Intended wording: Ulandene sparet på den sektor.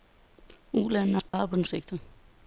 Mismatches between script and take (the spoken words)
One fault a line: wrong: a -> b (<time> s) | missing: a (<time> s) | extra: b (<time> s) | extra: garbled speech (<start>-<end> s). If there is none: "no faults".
no faults